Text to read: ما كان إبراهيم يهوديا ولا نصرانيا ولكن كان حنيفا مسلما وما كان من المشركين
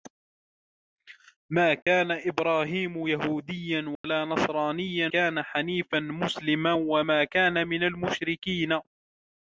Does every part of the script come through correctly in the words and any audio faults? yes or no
no